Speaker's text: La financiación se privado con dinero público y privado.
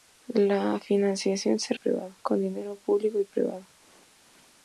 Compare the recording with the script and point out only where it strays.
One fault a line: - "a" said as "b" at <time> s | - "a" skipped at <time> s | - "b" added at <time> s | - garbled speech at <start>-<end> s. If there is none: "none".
none